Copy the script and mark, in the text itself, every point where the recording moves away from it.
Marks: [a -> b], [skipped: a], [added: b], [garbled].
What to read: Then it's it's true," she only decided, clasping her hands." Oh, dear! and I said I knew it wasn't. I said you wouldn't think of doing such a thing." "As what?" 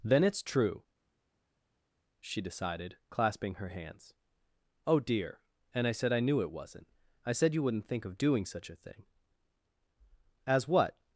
Then it's [skipped: it's] true," she [skipped: only] decided, clasping her hands." Oh, dear! and I said I knew it wasn't. I said you wouldn't think of doing such a thing." "As what?"